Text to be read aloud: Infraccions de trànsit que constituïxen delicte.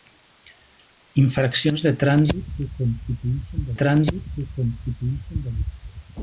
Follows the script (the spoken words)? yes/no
no